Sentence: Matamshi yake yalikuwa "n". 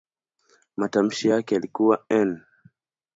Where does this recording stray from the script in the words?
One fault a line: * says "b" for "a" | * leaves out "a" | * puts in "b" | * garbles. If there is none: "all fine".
all fine